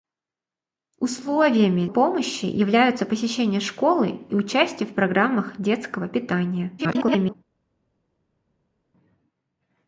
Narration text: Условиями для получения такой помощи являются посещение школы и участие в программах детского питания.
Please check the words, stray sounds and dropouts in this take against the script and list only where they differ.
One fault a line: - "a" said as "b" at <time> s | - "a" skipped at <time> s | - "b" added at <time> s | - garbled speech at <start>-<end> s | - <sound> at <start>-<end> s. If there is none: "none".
- "для получения такой" skipped at 1.9 s
- garbled speech at 6.8-7.3 s